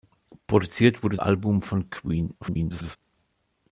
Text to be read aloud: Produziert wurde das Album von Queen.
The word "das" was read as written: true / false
false